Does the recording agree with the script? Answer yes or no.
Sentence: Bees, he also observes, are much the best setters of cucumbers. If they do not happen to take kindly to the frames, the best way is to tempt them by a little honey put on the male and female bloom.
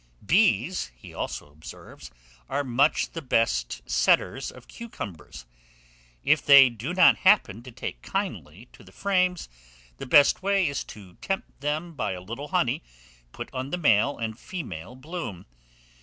yes